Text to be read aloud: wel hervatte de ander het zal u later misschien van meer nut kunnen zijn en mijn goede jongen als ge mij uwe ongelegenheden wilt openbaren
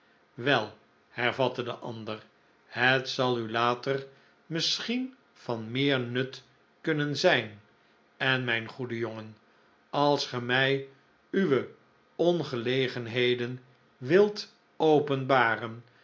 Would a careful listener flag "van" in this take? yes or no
no